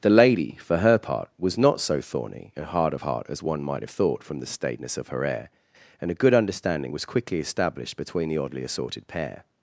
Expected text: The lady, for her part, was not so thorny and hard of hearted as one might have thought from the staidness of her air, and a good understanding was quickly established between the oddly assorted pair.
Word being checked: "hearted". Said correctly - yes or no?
no